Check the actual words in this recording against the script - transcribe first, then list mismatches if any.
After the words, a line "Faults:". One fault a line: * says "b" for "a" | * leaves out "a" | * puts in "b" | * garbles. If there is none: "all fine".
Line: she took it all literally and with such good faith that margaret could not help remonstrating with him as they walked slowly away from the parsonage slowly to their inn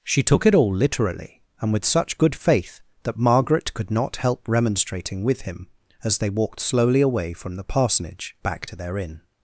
she took it all literally and with such good faith that margaret could not help remonstrating with him as they walked slowly away from the parsonage back to their inn
Faults:
* says "back" for "slowly"